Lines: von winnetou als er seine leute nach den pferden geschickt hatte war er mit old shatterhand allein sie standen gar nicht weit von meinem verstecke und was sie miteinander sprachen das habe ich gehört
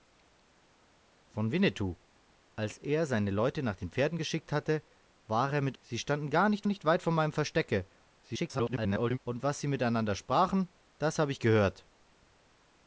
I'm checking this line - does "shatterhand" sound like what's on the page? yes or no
no